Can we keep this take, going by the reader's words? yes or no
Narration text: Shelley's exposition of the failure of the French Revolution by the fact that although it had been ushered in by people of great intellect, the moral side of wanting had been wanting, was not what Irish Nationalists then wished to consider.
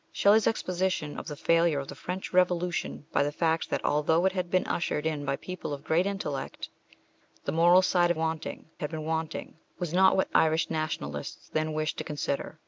yes